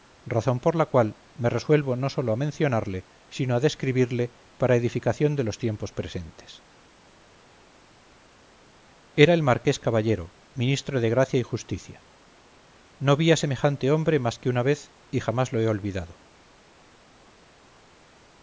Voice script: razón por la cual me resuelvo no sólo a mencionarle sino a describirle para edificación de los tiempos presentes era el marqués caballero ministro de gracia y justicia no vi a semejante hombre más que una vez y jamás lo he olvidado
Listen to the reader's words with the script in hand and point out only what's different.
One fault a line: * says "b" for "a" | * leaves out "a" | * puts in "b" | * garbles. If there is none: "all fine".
all fine